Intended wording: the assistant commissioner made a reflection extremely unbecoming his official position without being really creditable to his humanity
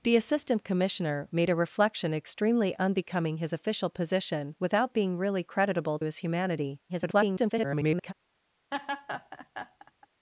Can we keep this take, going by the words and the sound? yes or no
no